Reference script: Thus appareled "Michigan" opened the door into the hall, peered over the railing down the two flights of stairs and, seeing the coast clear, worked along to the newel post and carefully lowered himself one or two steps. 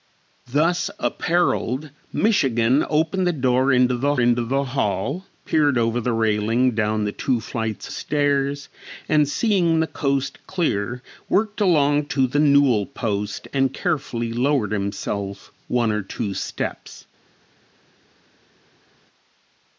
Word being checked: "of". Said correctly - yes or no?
no